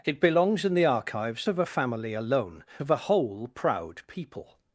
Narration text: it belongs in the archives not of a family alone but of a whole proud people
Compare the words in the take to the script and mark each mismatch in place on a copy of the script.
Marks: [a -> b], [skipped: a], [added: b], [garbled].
it belongs in the archives [skipped: not] of a family alone [skipped: but] of a whole proud people